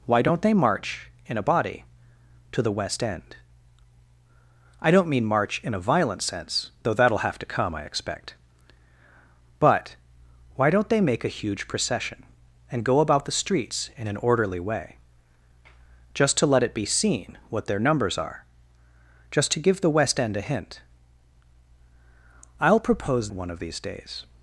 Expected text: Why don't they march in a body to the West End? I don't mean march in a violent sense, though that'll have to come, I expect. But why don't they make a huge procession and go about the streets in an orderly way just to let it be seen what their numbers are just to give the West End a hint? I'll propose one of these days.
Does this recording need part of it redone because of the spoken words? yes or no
no